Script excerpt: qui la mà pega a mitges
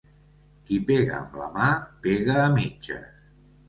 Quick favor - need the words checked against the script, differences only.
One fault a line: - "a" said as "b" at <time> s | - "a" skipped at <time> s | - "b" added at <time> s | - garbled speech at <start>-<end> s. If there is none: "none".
- "pega amb" added at 0.9 s